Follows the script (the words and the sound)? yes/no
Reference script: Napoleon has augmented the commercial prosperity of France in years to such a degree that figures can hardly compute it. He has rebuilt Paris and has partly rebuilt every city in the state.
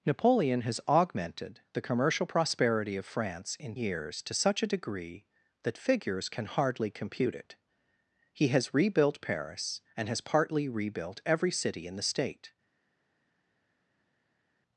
yes